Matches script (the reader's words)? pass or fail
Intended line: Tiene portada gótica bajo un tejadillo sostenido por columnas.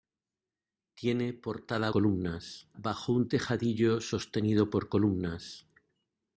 fail